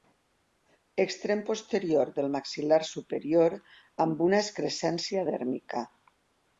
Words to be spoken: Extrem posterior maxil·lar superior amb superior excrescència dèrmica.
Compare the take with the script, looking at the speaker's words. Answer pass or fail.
fail